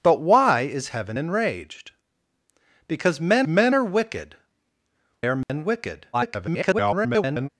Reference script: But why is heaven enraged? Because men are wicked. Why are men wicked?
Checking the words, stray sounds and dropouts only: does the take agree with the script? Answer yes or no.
no